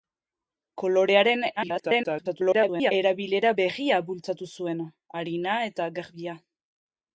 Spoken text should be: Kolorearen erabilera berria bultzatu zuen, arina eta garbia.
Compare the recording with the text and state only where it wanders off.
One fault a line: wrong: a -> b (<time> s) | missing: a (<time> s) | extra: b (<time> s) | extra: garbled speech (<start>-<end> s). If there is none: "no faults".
extra: garbled speech (1.6-2.9 s)